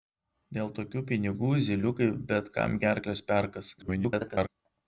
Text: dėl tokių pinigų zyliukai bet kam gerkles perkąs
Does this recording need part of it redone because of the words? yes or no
yes